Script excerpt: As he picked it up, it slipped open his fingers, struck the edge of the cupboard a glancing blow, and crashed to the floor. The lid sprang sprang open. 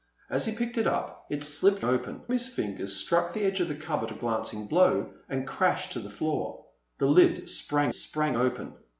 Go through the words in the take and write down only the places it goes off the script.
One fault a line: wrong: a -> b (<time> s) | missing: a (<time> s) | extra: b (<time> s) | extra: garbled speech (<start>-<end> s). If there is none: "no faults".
no faults